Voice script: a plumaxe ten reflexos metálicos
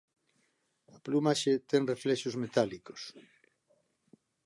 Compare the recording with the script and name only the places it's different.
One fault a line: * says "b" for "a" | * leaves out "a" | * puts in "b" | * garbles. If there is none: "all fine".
all fine